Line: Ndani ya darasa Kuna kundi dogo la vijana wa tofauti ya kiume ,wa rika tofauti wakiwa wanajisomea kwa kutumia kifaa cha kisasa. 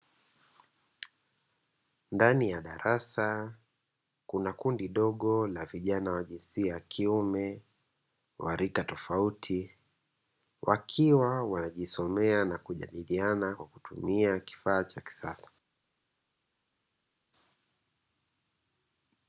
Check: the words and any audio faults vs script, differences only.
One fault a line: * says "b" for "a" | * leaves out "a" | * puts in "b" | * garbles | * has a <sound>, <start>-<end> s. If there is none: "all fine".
* says "jinsia" for "tofauti"
* puts in "na kujadiliana"